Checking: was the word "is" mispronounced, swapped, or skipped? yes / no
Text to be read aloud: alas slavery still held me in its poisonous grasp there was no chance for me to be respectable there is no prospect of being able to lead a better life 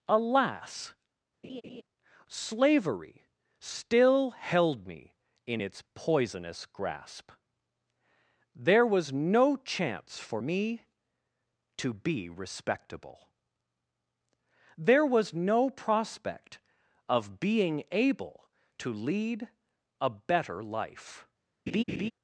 yes